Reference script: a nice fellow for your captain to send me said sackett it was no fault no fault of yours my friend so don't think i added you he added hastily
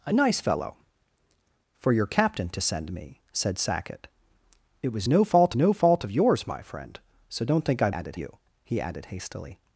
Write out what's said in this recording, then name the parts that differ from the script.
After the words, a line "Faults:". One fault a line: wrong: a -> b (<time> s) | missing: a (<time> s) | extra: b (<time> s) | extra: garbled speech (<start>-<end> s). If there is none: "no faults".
a nice fellow for your captain to send me said sackett it was no fault no fault of yours my friend so don't think i added you he added hastily
Faults:
no faults